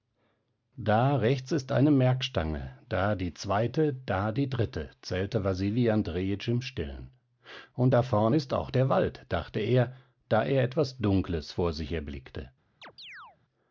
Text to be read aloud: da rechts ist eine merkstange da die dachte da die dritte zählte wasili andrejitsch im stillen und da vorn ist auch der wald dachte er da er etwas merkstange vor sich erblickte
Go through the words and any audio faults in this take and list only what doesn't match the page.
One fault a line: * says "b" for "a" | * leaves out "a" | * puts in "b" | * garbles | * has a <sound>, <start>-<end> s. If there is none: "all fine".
* says "zweite" for "dachte"
* says "dunkles" for "merkstange"
* has a chirp, 12.8-13.4 s